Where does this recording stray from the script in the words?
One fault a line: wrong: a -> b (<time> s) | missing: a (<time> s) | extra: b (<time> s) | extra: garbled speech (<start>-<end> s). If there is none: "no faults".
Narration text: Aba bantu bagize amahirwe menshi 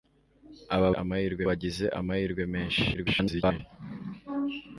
wrong: bantu -> amahirwe (1.0 s)
extra: garbled speech (2.9-3.6 s)